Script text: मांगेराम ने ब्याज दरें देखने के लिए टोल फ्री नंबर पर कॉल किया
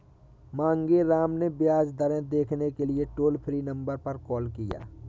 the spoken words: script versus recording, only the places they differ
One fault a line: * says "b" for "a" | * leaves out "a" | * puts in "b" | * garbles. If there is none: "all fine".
all fine